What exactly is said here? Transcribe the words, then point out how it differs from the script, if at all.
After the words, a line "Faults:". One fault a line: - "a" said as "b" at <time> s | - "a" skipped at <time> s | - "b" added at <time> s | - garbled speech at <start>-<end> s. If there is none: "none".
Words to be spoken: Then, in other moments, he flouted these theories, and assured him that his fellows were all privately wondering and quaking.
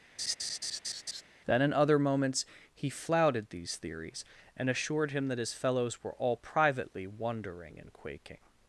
Then, in other moments, he flouted these theories, and assured him that his fellows were all privately wondering and quaking.
Faults:
none